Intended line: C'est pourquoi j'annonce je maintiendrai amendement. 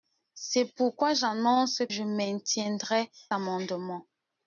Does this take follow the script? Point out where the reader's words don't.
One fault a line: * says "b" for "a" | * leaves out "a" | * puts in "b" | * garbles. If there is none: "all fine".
all fine